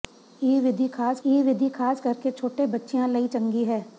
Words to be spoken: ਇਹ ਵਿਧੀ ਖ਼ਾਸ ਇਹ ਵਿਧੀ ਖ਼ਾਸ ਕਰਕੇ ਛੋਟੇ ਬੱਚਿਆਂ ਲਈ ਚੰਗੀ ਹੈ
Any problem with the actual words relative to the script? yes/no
no